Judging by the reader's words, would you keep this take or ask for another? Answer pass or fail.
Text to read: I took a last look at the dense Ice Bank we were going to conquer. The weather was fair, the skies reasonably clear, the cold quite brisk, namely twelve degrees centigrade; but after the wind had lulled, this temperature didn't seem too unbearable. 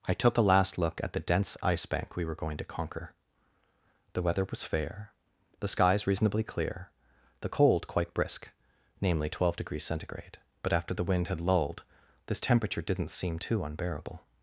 pass